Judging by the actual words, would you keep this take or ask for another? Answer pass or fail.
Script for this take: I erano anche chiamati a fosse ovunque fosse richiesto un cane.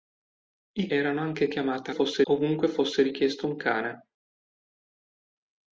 pass